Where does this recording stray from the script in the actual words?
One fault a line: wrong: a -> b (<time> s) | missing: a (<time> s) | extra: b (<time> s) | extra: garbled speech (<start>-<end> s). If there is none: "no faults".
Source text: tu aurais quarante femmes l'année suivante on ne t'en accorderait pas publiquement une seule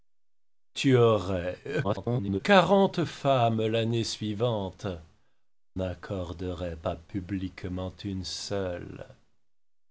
extra: garbled speech (1.8-2.4 s)
missing: on ne t'en (4.9 s)